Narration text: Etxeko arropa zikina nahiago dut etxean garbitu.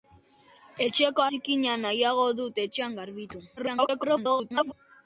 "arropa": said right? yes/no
no